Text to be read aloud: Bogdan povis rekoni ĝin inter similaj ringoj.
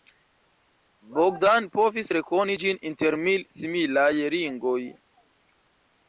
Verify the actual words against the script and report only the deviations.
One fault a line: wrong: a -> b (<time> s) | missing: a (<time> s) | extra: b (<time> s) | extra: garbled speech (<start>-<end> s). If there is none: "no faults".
extra: mil (3.2 s)